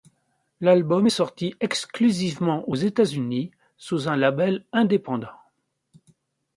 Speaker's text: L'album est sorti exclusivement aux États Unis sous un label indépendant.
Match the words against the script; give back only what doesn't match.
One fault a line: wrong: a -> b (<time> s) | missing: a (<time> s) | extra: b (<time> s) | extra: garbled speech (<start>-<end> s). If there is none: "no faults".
no faults